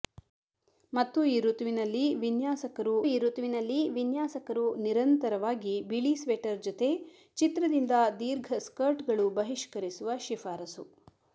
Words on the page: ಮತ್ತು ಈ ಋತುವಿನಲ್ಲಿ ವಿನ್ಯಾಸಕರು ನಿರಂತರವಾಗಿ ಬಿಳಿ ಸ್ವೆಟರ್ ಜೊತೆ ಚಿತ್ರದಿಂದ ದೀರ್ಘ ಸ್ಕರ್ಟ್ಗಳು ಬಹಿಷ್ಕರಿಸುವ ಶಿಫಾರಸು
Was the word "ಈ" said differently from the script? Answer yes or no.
no